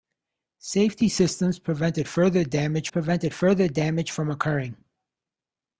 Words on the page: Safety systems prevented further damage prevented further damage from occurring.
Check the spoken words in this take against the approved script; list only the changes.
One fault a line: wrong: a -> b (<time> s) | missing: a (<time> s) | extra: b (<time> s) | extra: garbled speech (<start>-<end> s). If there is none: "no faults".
no faults